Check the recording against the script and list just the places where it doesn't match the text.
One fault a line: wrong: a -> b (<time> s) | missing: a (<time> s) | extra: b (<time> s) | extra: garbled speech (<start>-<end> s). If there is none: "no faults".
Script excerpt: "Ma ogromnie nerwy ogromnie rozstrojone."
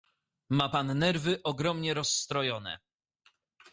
wrong: ogromnie -> pan (0.7 s)